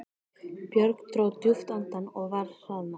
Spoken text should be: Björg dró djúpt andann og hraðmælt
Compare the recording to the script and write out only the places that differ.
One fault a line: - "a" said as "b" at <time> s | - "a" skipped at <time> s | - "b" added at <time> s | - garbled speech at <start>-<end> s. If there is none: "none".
- "var" added at 2.4 s